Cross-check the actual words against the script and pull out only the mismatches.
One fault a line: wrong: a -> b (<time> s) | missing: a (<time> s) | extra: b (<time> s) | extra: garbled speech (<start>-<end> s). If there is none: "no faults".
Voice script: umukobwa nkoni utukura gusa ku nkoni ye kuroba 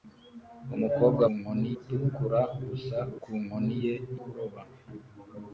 no faults